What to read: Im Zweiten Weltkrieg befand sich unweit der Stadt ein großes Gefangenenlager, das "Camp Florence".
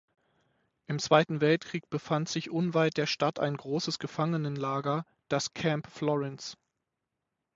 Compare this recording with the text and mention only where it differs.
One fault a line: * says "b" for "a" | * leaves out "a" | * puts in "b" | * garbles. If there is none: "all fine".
all fine